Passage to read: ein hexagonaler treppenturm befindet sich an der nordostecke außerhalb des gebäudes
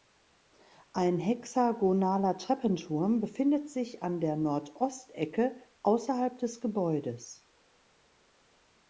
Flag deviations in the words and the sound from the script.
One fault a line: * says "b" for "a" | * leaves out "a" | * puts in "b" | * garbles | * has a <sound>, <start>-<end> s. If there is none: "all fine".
all fine